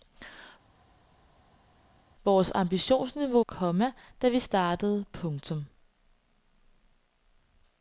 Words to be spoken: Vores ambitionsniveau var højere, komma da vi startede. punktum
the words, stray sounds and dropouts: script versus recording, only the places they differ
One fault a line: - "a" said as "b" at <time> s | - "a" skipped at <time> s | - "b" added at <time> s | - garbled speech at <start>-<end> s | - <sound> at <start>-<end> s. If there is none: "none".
- "var højere" skipped at 3.4 s